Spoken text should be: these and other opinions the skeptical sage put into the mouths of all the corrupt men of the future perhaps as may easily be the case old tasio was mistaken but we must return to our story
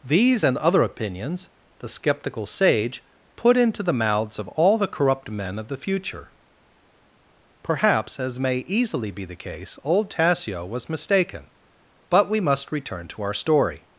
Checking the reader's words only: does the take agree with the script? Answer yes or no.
yes